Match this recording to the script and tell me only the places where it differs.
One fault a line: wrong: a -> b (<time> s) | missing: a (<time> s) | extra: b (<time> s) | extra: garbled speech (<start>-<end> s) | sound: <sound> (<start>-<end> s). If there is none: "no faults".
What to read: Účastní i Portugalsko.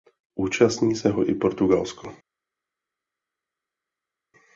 extra: se ho (0.9 s)